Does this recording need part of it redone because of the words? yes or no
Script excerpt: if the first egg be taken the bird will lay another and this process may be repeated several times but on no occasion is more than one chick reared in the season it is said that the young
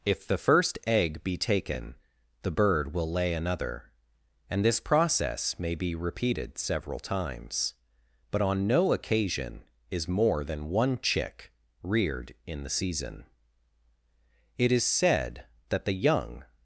no